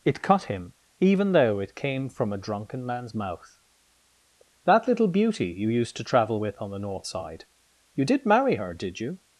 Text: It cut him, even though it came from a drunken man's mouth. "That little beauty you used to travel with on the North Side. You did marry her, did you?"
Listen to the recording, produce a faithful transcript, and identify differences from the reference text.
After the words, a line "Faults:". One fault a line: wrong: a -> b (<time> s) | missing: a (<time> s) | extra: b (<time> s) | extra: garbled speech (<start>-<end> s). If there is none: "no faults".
It cut him, even though it came from a drunken man's mouth. "That little beauty you used to travel with on the North Side. You did marry her, did you?"
Faults:
no faults